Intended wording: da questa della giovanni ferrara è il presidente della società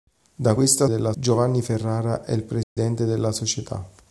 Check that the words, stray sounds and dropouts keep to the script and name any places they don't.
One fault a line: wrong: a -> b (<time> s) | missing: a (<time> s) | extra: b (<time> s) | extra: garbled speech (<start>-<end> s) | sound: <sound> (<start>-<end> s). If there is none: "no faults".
sound: dropout (2.6-2.8 s)